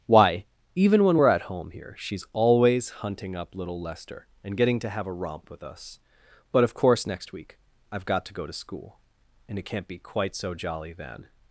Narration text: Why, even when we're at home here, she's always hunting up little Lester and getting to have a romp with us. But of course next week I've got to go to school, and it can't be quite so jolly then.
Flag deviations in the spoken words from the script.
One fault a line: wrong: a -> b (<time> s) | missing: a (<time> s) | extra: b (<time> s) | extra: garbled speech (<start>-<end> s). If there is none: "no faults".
no faults